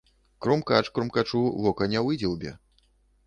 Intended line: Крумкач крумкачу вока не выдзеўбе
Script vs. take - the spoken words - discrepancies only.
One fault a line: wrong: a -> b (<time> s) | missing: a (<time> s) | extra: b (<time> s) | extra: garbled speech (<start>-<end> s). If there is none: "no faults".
no faults